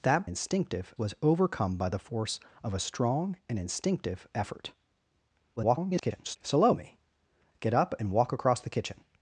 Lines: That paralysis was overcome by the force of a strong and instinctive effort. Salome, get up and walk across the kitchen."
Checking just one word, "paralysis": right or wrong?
wrong